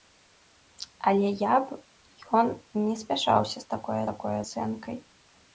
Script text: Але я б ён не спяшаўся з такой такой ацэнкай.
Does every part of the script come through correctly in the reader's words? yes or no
yes